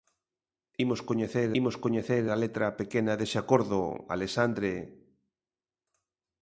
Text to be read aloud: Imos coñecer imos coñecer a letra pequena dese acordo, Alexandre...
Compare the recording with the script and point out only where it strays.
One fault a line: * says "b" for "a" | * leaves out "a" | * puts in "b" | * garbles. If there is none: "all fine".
all fine